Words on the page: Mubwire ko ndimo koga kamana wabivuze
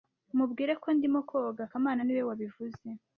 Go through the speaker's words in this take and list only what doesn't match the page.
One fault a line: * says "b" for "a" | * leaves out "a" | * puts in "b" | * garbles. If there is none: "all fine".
* puts in "niwe"